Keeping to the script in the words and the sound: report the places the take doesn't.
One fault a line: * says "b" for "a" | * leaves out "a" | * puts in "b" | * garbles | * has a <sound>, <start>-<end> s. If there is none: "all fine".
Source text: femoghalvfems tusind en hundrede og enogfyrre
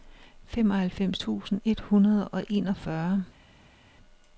* says "et" for "en"